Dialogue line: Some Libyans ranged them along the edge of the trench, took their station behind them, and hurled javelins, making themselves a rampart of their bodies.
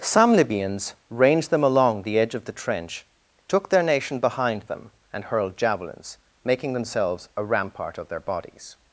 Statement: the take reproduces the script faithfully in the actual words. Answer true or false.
false